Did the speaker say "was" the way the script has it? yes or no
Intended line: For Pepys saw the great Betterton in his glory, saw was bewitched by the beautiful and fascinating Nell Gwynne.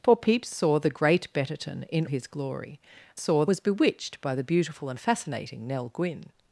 yes